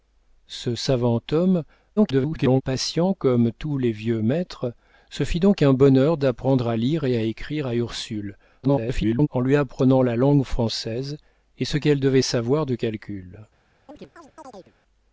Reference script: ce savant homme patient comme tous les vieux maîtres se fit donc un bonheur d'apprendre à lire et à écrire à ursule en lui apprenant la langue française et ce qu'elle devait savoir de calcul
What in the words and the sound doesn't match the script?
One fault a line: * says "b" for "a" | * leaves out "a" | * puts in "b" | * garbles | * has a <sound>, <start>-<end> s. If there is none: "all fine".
* garbles
* garbles
* has a chirp, 13.9-14.7 s